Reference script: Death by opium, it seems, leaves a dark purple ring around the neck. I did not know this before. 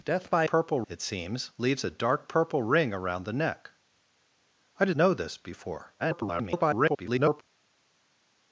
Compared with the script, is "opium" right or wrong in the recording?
wrong